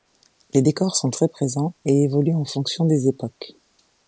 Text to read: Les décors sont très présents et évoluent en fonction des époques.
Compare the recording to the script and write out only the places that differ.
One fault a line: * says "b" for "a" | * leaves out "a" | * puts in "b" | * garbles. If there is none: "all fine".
all fine